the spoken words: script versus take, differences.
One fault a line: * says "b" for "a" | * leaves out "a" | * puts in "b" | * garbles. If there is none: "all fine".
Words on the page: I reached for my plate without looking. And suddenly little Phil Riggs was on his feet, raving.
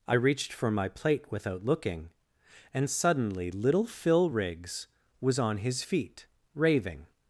all fine